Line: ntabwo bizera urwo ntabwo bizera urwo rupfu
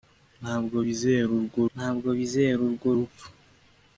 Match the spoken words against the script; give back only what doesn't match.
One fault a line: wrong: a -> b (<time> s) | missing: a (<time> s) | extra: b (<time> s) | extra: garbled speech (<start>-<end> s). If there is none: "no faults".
no faults